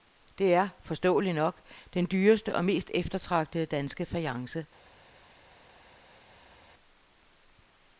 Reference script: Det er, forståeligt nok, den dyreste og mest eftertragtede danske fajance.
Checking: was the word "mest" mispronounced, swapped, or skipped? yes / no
no